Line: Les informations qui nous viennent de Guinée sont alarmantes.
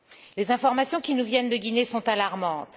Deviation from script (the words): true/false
false